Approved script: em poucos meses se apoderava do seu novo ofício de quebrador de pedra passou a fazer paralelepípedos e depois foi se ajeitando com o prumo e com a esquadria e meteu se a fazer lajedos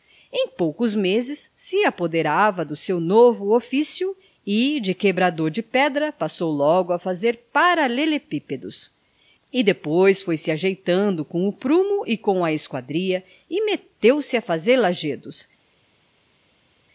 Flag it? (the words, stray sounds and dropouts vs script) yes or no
yes